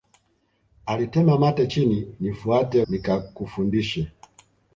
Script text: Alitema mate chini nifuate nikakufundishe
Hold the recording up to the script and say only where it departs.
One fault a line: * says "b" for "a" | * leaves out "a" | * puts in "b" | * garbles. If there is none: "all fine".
all fine